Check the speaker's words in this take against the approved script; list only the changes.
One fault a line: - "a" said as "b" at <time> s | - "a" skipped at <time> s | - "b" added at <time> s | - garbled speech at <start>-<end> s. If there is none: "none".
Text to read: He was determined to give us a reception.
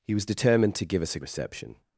none